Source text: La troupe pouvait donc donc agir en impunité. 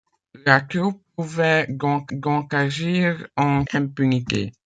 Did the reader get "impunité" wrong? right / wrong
right